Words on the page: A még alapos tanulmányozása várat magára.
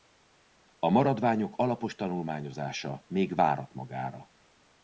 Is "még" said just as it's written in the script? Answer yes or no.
no